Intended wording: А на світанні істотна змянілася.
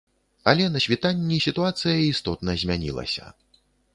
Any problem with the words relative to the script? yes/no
yes